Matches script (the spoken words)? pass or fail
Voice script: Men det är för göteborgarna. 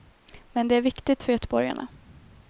fail